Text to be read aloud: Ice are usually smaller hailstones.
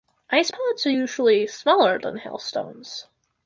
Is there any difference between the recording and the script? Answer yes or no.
yes